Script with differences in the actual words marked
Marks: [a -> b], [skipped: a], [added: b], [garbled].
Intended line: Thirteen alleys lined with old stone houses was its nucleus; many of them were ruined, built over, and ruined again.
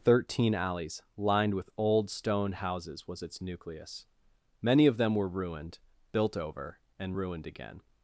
Thirteen alleys lined with old stone houses was its nucleus; many of them were ruined, built over, and ruined again.